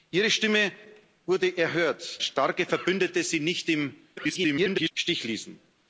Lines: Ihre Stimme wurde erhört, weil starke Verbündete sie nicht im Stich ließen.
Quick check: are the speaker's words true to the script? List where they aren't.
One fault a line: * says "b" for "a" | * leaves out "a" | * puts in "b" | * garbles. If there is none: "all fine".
* leaves out "weil"
* garbles